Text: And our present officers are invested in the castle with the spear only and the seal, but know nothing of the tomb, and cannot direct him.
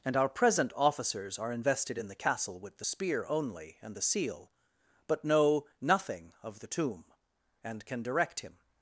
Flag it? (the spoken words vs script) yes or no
yes